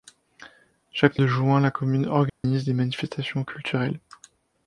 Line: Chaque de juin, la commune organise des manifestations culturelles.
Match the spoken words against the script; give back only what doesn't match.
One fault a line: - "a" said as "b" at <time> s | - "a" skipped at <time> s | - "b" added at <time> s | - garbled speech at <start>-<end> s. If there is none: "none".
none